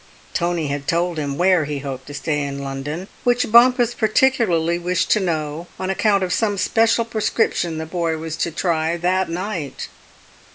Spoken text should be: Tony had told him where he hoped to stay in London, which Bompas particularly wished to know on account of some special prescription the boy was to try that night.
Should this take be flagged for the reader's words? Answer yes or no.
no